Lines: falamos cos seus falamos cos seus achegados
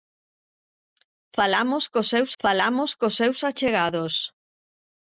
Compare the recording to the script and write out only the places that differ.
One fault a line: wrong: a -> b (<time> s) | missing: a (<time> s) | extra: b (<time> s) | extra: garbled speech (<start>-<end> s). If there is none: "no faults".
no faults